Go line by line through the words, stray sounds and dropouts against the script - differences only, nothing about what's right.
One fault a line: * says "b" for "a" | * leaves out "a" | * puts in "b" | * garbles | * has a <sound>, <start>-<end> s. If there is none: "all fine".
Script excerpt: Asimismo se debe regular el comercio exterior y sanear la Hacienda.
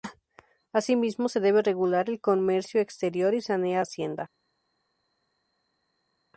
* leaves out "la"